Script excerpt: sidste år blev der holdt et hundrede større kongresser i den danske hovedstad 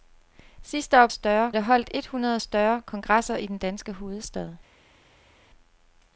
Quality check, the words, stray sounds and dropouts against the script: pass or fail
fail